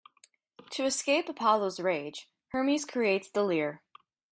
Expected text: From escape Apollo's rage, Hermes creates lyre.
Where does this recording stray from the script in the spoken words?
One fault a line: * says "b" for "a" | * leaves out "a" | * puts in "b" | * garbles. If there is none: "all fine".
* says "To" for "From"
* puts in "the"